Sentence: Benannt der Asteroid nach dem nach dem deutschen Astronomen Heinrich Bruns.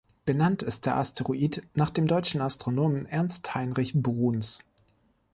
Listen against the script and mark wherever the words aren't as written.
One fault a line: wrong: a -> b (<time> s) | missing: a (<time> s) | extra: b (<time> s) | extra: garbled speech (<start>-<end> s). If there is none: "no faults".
extra: ist (0.6 s)
missing: nach dem (2.1 s)
extra: Ernst (3.0 s)